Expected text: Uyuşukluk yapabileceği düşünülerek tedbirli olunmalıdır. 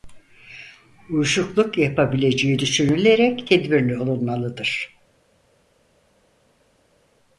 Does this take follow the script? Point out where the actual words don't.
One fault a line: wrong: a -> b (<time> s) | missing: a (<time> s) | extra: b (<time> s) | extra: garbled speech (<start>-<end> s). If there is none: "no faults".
no faults